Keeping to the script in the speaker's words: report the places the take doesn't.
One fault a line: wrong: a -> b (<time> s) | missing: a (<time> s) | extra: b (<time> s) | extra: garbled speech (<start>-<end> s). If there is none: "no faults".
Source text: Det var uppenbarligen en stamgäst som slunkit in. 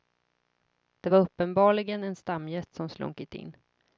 no faults